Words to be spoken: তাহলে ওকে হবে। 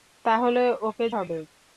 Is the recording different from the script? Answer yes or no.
no